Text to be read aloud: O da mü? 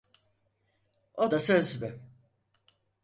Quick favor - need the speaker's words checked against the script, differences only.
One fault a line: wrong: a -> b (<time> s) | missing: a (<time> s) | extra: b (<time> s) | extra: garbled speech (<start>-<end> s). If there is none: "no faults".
extra: söz (1.4 s)